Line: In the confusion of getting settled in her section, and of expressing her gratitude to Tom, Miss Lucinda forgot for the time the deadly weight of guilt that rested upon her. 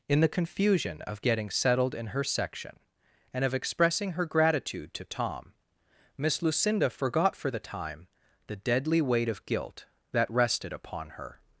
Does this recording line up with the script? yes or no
yes